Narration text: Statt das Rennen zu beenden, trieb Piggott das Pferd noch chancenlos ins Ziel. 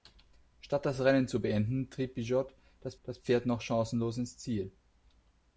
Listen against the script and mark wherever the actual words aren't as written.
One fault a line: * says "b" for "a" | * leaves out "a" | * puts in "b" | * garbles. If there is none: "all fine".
* puts in "das"